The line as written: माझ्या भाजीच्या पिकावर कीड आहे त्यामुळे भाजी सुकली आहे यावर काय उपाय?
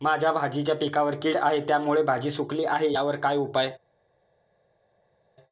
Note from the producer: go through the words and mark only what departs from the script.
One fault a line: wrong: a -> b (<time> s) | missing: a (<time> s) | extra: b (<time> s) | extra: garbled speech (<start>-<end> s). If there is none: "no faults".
no faults